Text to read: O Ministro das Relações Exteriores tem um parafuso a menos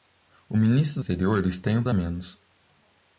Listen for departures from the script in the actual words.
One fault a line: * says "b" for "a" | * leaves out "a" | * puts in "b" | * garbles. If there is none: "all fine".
* leaves out "das Relações"
* leaves out "parafuso"